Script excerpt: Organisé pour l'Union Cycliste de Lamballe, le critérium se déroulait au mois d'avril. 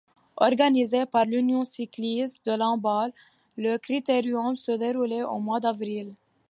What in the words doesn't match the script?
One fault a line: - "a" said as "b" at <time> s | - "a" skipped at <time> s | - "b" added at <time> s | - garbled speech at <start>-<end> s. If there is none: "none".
- "pour" said as "par" at 1.1 s